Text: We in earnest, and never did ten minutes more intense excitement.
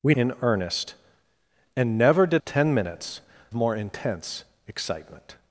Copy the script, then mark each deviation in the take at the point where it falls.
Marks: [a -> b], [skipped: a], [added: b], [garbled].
We in earnest, and never did ten minutes more intense excitement.